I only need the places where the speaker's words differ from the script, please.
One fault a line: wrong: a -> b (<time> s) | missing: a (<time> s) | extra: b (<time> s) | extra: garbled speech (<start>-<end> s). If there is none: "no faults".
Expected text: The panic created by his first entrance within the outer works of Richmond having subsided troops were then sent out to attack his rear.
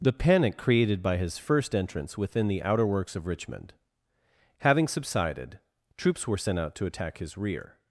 missing: then (6.4 s)